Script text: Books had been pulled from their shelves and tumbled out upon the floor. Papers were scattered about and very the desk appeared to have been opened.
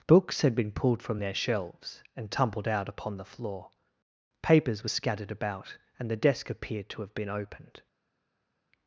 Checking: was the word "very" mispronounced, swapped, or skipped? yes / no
yes